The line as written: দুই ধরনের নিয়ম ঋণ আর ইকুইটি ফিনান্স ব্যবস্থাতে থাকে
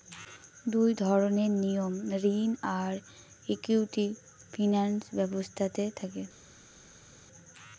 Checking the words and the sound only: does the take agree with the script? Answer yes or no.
yes